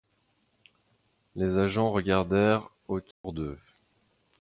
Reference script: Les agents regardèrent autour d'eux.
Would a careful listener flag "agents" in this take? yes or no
no